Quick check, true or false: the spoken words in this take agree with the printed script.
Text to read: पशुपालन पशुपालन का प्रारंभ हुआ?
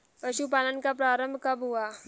false